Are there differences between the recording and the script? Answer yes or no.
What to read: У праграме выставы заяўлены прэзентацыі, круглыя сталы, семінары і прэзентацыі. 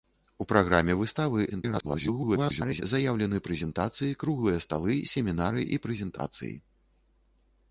yes